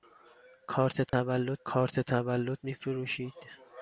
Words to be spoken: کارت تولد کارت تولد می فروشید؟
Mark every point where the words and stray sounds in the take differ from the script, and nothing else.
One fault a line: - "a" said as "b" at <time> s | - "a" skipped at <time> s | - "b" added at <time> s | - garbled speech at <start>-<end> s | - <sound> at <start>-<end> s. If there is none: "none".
- dropout at 1.1-1.1 s